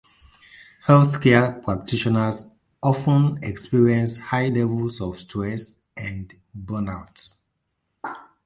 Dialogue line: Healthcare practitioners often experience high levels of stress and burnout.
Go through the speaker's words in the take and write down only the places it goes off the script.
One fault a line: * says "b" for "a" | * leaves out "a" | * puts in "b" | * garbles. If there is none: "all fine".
all fine